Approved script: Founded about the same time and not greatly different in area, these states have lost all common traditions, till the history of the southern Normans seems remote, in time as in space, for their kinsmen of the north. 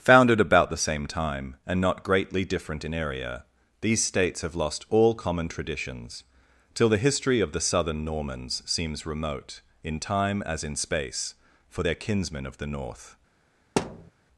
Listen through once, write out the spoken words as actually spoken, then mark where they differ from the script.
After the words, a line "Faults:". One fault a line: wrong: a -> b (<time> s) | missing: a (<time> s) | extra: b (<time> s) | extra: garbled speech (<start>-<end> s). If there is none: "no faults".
Founded about the same time and not greatly different in area, these states have lost all common traditions, till the history of the southern Normans seems remote, in time as in space, for their kinsmen of the north.
Faults:
no faults